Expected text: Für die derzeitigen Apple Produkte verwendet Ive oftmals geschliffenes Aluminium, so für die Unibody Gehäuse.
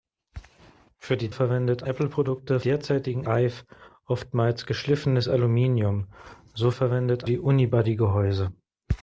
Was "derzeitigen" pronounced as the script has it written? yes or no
no